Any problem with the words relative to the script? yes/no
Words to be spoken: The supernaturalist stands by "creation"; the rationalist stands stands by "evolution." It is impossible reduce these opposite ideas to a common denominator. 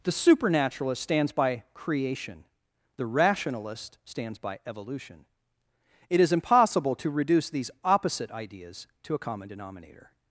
yes